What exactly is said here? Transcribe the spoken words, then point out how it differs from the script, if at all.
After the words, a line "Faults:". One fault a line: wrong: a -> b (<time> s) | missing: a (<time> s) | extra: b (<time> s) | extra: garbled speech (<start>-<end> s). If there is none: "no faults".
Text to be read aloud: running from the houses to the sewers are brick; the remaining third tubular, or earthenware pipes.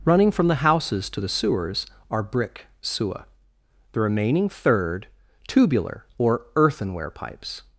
running from the houses to the sewers are brick; sewer the remaining third tubular, or earthenware pipes.
Faults:
extra: sewer (2.8 s)